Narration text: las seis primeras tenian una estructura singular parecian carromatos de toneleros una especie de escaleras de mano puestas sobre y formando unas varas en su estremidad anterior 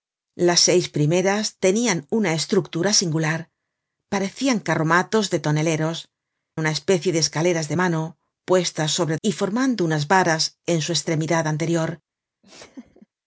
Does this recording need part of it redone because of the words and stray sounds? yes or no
yes